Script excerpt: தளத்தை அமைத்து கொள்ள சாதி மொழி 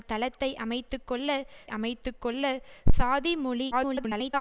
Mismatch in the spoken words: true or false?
true